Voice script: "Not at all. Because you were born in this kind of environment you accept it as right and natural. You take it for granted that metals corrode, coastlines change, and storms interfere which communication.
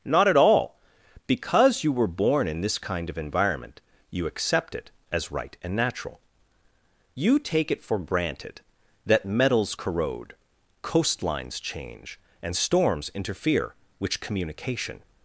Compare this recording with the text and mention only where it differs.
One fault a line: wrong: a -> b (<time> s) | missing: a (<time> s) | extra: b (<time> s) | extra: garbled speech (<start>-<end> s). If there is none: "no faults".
no faults